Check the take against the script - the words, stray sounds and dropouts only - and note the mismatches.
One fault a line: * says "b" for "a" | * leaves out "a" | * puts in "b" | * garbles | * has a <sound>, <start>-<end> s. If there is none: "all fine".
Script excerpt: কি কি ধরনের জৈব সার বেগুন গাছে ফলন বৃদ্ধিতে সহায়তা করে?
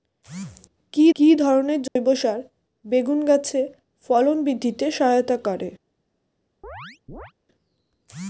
* has a dropout, 1.9-2.0 s
* has a chirp, 6.6-7.3 s